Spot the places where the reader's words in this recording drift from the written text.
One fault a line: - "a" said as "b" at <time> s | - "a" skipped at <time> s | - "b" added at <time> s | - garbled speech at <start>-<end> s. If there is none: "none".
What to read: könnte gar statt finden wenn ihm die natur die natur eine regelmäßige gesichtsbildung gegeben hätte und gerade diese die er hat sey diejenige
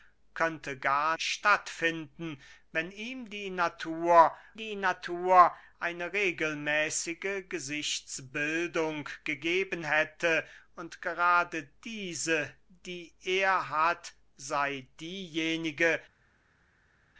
none